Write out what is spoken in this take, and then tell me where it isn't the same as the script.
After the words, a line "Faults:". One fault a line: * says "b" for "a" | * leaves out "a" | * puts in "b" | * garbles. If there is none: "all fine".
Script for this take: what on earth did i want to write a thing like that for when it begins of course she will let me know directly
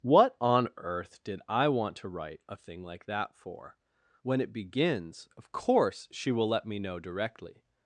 what on earth did i want to write a thing like that for when it begins of course she will let me know directly
Faults:
all fine